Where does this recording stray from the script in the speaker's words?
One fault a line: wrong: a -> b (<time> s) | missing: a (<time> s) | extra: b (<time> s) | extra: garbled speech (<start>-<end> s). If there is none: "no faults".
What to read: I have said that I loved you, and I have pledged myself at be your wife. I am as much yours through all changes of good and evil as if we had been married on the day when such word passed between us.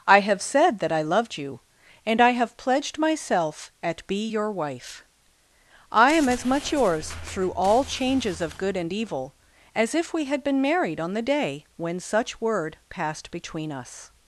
no faults